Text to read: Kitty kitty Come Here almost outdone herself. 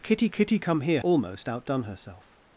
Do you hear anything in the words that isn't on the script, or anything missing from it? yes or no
no